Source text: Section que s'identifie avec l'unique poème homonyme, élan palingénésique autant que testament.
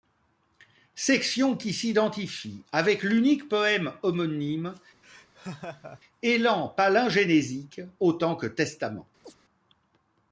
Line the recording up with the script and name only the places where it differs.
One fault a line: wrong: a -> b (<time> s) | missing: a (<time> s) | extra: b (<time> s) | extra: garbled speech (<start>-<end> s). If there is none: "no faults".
wrong: que -> qui (1.6 s)